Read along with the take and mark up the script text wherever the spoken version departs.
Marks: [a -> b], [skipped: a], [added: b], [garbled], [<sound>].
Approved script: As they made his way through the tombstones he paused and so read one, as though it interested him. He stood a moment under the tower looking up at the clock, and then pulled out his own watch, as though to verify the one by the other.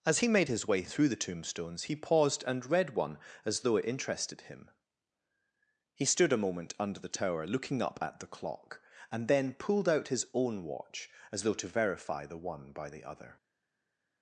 As [they -> he] made his way through the tombstones he paused and [skipped: so] read one, as though it interested him. He stood a moment under the tower looking up at the clock, and then pulled out his own watch, as though to verify the one by the other.